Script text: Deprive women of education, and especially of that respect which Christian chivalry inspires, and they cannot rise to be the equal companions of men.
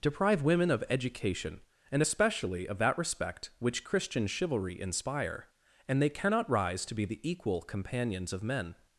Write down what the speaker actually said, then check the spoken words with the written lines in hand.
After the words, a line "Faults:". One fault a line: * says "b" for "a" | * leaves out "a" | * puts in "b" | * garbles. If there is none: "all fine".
Deprive women of education, and especially of that respect which Christian chivalry inspire, and they cannot rise to be the equal companions of men.
Faults:
* says "inspire" for "inspires"